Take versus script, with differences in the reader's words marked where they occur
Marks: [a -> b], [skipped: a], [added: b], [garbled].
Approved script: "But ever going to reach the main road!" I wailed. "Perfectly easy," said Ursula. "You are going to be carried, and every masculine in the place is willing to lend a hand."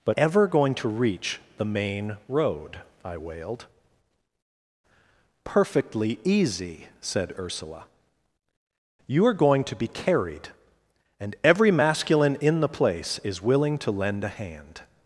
"But ever going to reach the main road!" I wailed. "Perfectly easy," said Ursula. "You are going to be carried, and every masculine in the place is willing to lend a hand."